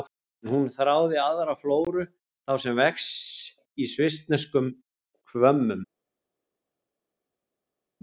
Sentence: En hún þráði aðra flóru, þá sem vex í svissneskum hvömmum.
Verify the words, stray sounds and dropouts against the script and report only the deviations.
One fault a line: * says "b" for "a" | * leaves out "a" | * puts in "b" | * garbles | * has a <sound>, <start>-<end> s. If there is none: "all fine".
all fine